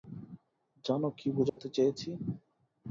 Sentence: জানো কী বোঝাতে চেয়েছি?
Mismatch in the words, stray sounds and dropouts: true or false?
true